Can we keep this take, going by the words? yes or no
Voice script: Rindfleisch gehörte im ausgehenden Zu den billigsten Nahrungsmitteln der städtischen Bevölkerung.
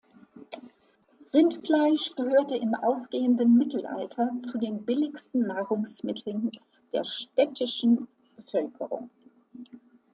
no